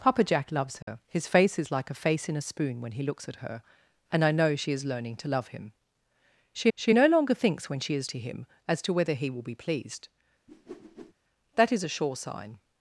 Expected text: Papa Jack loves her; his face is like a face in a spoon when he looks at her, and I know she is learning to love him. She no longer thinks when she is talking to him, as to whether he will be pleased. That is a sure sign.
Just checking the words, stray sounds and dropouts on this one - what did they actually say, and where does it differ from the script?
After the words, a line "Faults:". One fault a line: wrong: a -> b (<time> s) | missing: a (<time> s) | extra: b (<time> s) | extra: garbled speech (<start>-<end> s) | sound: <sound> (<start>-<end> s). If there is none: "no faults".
Papa Jack loves her; his face is like a face in a spoon when he looks at her, and I know she is learning to love him. She she no longer thinks when she is to him, as to whether he will be pleased. That is a sure sign.
Faults:
sound: dropout (0.8-0.9 s)
extra: she (6.7 s)
missing: talking (8.1 s)
sound: whoosh (10.5-11.1 s)